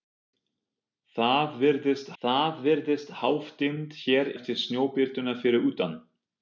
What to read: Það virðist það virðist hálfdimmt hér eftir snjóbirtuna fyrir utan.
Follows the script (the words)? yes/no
yes